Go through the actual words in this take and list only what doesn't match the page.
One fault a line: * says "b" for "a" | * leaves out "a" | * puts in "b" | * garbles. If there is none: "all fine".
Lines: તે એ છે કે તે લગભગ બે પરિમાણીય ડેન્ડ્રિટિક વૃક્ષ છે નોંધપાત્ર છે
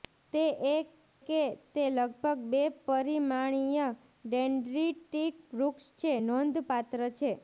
* leaves out "છે"